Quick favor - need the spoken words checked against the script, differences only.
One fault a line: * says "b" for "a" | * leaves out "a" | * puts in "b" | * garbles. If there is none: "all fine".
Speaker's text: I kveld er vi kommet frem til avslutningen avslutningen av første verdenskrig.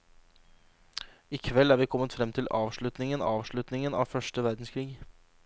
all fine